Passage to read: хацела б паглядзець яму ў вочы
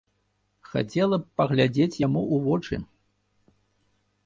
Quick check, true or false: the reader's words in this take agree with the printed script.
true